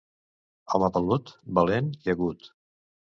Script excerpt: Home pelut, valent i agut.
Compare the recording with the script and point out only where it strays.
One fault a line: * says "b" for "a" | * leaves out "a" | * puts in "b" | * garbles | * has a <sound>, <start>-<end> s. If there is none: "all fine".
all fine